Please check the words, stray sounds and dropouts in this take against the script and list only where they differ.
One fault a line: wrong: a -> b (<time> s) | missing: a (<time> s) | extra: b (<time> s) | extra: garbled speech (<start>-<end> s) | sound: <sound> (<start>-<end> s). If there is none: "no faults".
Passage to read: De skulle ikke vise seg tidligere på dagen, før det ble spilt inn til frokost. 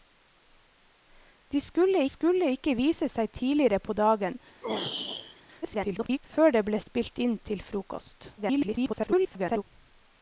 extra: skulle (2.1 s)
sound: throat clearing (4.6-5.4 s)
extra: garbled speech (5.6-6.2 s)
extra: garbled speech (8.4-9.6 s)